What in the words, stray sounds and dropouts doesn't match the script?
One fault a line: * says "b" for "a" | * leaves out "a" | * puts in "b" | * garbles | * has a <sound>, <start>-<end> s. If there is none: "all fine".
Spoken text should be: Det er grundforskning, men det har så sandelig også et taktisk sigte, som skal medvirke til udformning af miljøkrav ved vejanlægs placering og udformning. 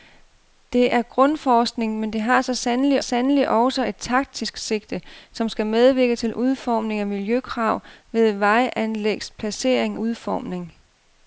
* puts in "sandelig"
* leaves out "og"